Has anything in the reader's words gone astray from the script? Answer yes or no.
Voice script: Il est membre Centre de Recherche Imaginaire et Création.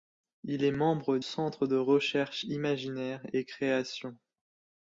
no